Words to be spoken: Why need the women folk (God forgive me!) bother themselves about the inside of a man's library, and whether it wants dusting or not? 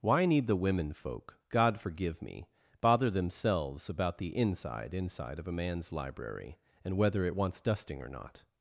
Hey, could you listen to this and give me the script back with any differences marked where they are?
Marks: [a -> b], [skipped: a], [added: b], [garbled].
Why need the women folk (God forgive me!) bother themselves about the inside [added: inside] of a man's library, and whether it wants dusting or not?